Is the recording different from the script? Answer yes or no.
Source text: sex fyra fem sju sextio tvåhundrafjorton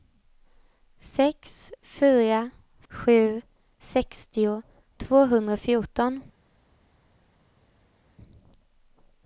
yes